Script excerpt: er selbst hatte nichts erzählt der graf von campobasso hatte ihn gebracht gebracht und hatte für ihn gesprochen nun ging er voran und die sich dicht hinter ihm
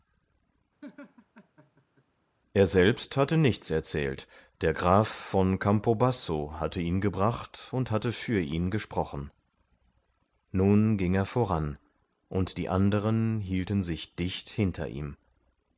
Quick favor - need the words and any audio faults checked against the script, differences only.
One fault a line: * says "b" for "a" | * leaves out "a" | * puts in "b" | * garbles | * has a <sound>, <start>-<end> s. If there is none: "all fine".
* has a laugh, 0.8-2.0 s
* leaves out "gebracht"
* puts in "anderen hielten"